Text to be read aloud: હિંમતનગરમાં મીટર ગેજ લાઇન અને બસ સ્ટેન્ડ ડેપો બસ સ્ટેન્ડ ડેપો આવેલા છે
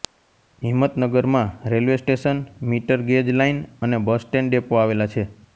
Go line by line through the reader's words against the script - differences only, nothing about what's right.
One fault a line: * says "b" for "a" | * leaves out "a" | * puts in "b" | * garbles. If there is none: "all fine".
* puts in "રેલ્વે સ્ટેશન"
* leaves out "બસ સ્ટેન્ડ ડેપો"